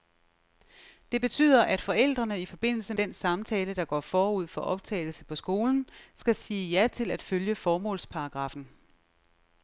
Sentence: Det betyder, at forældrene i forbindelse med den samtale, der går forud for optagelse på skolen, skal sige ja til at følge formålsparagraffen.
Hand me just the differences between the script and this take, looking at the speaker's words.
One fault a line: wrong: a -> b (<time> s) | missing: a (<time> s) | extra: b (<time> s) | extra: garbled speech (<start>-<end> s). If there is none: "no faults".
missing: med (2.9 s)